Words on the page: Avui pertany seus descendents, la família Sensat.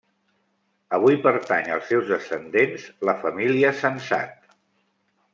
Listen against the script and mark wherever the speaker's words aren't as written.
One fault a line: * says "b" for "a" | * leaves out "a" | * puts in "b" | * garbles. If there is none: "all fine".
* puts in "als"